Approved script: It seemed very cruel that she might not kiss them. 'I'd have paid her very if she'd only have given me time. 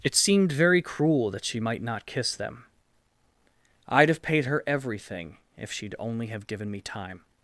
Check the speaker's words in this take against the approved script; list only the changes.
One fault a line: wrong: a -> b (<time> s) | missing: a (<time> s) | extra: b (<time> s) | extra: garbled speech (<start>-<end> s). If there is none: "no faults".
wrong: very -> everything (4.7 s)